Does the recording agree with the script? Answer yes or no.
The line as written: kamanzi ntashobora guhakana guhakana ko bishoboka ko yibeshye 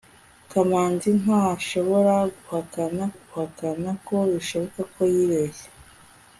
yes